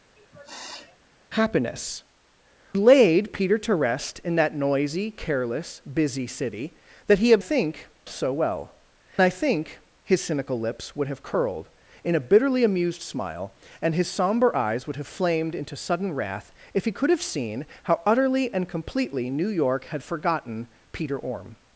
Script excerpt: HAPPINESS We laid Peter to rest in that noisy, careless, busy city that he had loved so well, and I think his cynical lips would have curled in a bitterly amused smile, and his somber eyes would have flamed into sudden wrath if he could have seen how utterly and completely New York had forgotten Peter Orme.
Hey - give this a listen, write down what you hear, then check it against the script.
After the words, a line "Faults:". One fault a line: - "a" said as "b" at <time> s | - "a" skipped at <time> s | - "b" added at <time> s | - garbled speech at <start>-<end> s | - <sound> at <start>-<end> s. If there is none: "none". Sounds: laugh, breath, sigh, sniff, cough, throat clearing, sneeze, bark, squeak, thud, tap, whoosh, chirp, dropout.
HAPPINESS Laid Peter to rest in that noisy, careless, busy city that he had think so well, I think his cynical lips would have curled in a bitterly amused smile, and his somber eyes would have flamed into sudden wrath if he could have seen how utterly and completely New York had forgotten Peter Orme.
Faults:
- sniff at 0.2-1.0 s
- "We" skipped at 2.0 s
- "loved" said as "think" at 7.4 s
- "and" skipped at 8.8 s